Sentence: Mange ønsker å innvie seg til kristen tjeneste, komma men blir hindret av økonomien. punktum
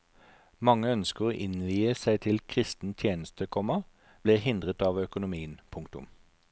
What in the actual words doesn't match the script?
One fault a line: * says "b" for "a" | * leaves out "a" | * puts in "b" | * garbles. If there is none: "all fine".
* leaves out "men"